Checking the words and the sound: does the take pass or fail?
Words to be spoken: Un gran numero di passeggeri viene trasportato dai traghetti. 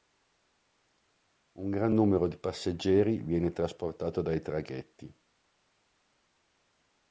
pass